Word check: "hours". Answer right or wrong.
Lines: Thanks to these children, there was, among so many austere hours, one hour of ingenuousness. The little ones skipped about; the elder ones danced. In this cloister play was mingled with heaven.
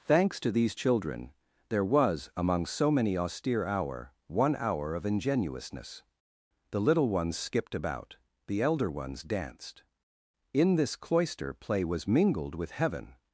wrong